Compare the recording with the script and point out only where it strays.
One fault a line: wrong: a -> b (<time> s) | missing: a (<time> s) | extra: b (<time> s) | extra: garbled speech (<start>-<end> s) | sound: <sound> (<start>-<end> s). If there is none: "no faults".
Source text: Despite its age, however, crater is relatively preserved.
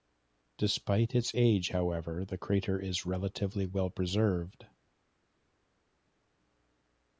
extra: the (2.2 s)
extra: well (3.7 s)